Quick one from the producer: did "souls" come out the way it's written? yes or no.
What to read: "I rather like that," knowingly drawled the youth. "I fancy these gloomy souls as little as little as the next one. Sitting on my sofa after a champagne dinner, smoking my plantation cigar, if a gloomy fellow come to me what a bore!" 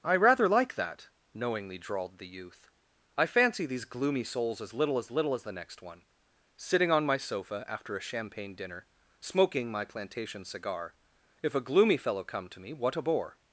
yes